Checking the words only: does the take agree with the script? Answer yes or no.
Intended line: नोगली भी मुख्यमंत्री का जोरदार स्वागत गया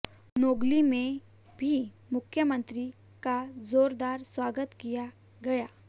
no